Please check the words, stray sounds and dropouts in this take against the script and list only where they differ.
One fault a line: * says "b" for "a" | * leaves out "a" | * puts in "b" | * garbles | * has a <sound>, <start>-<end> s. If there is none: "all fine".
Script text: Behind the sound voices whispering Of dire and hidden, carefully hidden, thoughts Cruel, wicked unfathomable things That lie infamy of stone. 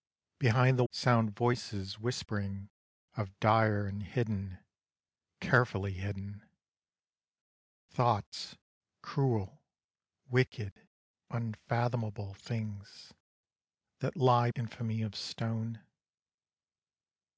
all fine